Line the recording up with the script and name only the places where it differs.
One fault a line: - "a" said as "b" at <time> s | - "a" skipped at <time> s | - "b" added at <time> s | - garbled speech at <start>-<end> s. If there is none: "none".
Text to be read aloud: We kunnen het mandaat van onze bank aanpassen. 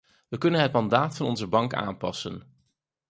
none